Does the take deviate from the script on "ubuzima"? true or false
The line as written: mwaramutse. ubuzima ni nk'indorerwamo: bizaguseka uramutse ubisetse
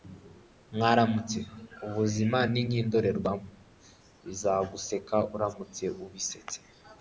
false